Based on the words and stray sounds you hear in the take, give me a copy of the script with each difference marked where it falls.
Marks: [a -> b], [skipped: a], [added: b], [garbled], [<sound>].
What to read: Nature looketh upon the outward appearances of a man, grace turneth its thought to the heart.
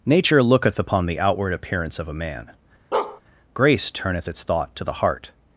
Nature looketh upon the outward [appearances -> appearance] of a man, [bark] grace turneth its thought to the heart.